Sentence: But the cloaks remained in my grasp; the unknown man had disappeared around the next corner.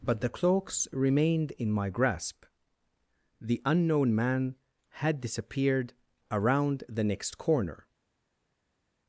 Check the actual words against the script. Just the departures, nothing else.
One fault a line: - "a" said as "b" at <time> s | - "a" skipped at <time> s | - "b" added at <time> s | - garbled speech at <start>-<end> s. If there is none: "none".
none